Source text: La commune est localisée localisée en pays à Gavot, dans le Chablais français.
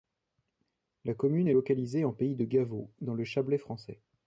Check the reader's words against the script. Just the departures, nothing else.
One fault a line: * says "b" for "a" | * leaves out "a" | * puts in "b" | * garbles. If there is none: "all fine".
* leaves out "localisée"
* says "de" for "à"